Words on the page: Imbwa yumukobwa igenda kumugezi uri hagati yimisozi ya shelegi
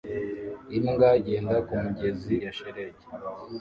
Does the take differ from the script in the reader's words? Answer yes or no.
yes